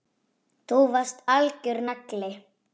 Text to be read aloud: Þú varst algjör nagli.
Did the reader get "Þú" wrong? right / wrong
right